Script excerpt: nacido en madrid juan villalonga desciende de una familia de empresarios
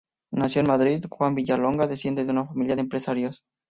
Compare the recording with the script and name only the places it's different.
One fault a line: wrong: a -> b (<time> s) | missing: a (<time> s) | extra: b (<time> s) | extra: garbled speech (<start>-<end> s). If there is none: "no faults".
no faults